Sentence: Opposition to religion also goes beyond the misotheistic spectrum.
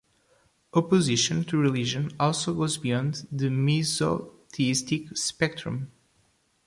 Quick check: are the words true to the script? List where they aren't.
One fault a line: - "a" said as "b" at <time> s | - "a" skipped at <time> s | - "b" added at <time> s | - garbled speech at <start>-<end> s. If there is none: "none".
none